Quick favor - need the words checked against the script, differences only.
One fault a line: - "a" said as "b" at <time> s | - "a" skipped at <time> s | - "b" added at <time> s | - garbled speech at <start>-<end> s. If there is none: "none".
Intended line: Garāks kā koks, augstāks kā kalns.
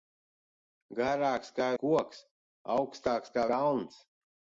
none